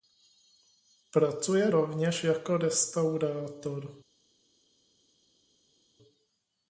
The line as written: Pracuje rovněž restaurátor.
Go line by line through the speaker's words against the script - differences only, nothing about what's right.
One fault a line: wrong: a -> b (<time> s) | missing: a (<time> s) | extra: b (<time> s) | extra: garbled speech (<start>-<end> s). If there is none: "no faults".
extra: jako (2.2 s)